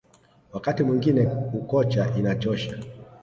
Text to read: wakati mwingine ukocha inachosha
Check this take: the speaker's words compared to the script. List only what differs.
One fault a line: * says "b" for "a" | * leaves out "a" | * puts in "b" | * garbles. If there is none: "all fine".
all fine